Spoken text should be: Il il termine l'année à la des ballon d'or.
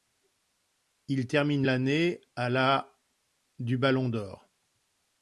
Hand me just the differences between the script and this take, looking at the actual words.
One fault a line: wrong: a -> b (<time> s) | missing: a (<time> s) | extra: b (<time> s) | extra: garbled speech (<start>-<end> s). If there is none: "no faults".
missing: il (1.3 s)
wrong: des -> du (3.6 s)